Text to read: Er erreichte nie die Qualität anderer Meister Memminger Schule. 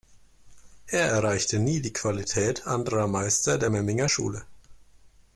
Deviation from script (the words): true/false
true